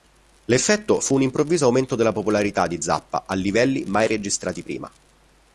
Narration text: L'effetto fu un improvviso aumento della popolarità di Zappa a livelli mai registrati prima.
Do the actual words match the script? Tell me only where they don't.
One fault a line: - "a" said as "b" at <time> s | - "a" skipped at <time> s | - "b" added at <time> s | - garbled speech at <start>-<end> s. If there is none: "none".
none